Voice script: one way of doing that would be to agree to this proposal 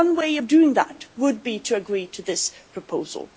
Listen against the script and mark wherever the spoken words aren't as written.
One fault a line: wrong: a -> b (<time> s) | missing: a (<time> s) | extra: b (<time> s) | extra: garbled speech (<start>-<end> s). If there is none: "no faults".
no faults